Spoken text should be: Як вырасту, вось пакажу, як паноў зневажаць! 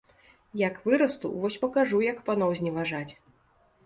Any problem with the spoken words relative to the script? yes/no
no